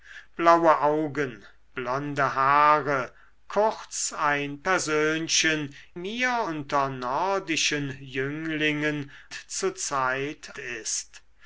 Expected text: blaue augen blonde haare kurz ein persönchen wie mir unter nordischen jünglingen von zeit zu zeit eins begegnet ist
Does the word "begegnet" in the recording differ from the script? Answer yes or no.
yes